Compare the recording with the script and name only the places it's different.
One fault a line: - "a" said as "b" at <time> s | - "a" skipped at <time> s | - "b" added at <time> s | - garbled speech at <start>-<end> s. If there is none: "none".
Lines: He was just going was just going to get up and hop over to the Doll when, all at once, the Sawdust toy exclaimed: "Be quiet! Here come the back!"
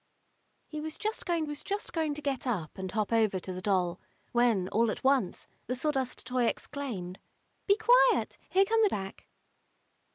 none